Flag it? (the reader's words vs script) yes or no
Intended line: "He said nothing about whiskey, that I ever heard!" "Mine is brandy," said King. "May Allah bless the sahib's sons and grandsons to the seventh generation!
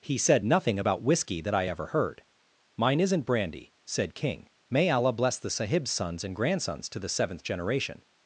yes